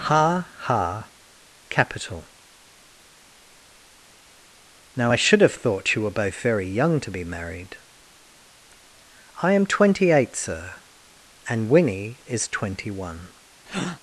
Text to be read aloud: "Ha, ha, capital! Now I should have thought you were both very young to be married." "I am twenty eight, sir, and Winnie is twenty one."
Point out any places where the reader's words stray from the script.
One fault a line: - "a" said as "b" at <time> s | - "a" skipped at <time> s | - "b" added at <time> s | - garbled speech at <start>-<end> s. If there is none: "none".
none